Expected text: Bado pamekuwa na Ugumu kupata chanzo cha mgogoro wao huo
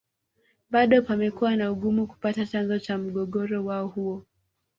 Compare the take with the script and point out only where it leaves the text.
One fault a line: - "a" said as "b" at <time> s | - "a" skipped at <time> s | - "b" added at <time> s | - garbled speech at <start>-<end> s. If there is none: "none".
none